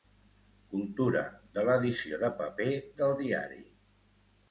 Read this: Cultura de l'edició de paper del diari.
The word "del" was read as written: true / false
true